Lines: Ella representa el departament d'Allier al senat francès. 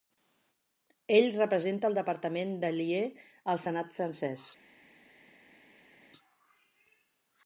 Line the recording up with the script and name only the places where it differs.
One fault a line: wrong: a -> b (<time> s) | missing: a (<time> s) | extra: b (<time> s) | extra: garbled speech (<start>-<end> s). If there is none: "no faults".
wrong: Ella -> Ell (1.2 s)